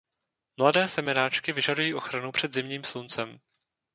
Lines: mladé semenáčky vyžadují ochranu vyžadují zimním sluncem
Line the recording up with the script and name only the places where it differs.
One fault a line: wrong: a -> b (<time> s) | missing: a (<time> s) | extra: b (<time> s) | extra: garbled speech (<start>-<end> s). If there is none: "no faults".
wrong: vyžadují -> před (2.3 s)